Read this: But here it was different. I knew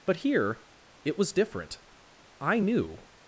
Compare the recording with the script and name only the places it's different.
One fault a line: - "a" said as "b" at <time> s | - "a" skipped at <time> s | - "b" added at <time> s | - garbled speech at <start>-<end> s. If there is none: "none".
none